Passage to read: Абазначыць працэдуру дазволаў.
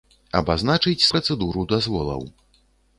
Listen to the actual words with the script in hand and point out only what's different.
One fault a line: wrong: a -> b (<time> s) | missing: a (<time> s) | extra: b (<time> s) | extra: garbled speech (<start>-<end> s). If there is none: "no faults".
no faults